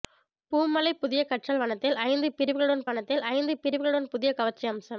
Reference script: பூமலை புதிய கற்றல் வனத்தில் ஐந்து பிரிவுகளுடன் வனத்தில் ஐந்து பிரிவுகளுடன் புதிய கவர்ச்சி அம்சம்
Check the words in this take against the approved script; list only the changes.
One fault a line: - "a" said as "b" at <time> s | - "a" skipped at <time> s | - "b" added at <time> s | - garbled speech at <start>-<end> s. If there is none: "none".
none